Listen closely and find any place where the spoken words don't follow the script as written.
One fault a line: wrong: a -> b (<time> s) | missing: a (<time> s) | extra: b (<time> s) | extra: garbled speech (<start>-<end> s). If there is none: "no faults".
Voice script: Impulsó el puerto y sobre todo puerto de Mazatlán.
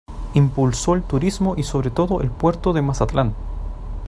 wrong: puerto -> turismo (1.0 s)
extra: el (2.2 s)